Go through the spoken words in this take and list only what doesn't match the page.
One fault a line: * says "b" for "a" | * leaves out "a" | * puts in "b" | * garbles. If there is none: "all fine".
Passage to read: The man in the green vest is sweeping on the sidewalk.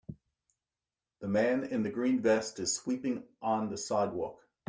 all fine